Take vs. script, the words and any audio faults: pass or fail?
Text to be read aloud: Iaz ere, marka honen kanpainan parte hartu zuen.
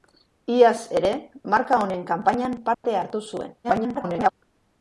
fail